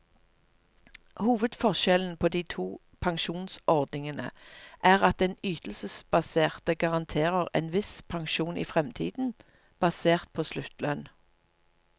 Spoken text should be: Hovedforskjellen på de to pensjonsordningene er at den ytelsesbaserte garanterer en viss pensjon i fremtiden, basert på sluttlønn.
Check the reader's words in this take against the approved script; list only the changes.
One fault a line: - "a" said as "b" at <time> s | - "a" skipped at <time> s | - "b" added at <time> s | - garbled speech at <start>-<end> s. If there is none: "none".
none